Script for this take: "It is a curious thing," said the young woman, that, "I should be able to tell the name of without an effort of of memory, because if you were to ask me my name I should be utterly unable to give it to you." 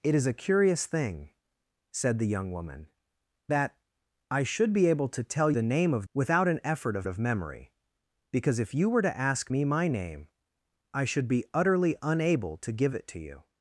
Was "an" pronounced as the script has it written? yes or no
yes